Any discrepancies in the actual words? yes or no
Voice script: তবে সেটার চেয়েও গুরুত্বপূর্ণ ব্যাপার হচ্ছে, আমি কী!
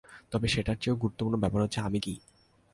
no